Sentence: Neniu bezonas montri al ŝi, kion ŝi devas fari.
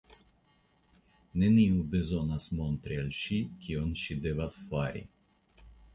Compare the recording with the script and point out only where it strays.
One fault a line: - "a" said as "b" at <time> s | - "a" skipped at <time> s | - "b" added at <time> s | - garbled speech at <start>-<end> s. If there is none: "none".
none